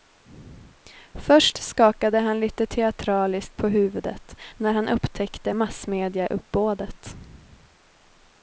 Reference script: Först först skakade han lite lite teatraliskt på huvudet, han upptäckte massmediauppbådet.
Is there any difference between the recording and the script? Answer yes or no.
yes